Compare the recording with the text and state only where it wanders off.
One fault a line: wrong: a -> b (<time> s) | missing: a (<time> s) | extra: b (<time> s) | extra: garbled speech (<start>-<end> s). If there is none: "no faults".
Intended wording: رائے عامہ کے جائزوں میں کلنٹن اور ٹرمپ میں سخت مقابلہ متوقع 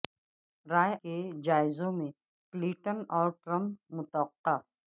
missing: عامہ (0.9 s)
missing: میں سخت مقابلہ (3.9 s)